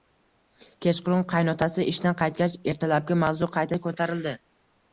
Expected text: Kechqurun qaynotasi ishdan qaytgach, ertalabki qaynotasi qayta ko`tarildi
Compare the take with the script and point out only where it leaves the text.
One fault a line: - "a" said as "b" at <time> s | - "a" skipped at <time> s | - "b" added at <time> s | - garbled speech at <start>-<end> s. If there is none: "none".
- "qaynotasi" said as "mavzu" at 3.3 s